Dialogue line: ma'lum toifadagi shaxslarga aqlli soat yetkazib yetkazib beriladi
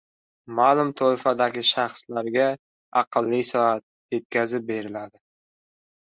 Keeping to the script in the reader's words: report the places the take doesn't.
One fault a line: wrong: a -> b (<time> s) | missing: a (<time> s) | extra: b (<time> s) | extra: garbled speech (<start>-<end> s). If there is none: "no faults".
missing: yetkazib (4.7 s)